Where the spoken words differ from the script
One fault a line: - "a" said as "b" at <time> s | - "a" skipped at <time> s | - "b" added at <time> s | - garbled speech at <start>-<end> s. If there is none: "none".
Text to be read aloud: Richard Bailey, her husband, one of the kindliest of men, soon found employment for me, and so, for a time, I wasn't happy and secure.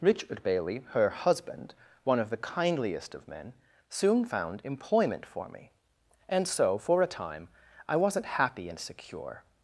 none